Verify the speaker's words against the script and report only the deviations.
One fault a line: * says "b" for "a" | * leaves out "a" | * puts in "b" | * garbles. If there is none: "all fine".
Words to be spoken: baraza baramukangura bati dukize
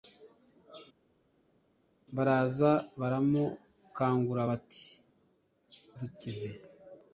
all fine